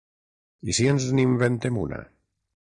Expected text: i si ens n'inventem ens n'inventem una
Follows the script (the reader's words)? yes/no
no